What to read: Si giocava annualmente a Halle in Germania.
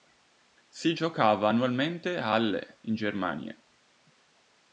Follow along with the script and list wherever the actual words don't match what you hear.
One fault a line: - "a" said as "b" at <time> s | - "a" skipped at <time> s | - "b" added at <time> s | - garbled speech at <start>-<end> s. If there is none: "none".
none